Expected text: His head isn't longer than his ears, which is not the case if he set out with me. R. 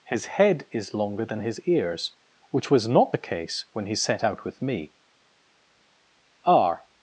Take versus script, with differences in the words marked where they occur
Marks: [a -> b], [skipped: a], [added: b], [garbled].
His head [isn't -> is] longer than his ears, which [is -> was] not the case [if -> when] he set out with me. R.